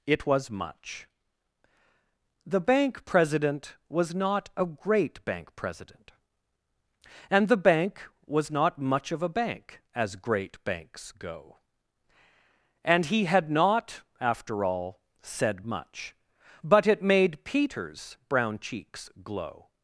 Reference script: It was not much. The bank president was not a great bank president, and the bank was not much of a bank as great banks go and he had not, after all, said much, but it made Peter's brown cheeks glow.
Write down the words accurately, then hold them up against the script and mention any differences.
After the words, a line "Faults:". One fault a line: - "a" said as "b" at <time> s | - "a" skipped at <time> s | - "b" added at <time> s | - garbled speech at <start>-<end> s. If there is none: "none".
It was much. The bank president was not a great bank president, and the bank was not much of a bank as great banks go and he had not, after all, said much, but it made Peter's brown cheeks glow.
Faults:
- "not" skipped at 0.5 s